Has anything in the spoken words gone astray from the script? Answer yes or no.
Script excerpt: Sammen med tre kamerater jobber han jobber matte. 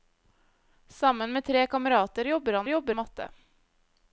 no